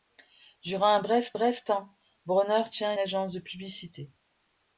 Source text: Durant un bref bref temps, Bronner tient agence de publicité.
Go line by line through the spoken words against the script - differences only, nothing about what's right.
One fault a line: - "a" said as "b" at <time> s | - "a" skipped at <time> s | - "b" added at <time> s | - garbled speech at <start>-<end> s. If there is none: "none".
none